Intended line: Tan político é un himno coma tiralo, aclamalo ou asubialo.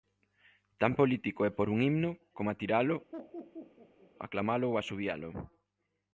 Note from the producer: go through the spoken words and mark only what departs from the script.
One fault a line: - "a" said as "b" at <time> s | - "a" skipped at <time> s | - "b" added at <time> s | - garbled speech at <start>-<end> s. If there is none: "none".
- "pór" added at 1.6 s